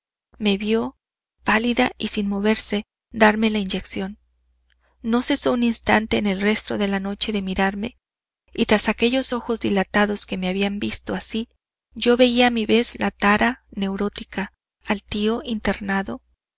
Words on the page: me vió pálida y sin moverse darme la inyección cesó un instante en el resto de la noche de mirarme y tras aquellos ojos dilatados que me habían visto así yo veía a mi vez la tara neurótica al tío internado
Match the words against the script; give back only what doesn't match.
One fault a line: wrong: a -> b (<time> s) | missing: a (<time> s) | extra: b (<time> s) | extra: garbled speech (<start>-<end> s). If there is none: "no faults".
extra: no (5.0 s)